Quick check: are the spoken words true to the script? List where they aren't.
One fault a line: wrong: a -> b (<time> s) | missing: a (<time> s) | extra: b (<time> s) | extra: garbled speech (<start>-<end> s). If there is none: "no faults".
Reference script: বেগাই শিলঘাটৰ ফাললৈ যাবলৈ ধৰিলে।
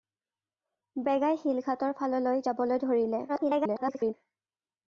extra: garbled speech (3.3-4.1 s)